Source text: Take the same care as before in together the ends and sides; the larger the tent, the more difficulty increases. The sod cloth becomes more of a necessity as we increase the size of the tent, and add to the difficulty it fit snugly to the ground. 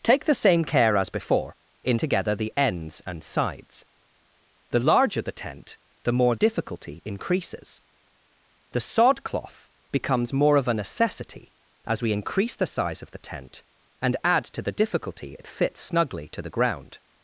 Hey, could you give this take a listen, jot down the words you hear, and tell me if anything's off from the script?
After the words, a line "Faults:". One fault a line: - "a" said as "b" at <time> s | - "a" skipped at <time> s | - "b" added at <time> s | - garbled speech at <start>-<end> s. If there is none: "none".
Take the same care as before in together the ends and sides; the larger the tent, the more difficulty increases. The sod cloth becomes more of a necessity as we increase the size of the tent, and add to the difficulty it fit snugly to the ground.
Faults:
none